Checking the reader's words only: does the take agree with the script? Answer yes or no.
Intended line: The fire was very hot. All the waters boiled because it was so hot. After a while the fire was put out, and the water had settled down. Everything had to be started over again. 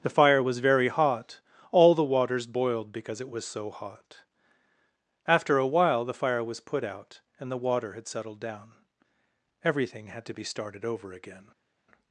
yes